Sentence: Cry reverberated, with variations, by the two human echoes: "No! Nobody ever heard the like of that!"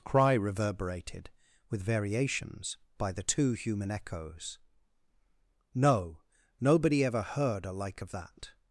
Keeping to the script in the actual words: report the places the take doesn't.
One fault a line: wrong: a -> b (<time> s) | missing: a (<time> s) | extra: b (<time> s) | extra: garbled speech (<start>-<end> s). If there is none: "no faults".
wrong: the -> a (7.7 s)